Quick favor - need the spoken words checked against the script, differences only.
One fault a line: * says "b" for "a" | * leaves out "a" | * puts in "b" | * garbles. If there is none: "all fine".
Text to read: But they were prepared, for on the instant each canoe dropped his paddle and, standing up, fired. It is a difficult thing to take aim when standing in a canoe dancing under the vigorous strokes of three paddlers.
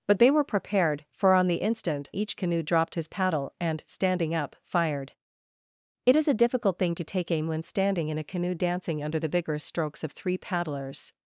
all fine